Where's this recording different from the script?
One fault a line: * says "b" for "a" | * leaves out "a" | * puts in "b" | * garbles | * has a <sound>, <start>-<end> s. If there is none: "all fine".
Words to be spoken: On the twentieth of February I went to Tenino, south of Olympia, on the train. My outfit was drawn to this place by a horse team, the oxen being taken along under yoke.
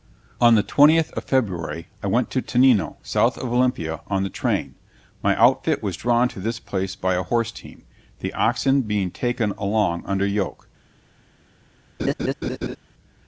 * has a laugh, 12.0-12.8 s